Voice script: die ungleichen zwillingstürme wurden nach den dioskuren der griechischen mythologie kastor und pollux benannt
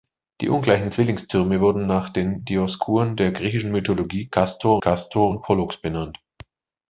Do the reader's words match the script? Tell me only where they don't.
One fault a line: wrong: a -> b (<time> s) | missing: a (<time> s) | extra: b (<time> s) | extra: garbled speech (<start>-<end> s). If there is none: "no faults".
extra: kastor (4.8 s)